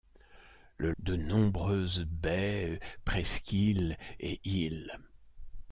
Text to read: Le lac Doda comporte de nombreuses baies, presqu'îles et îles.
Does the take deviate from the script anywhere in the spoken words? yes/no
yes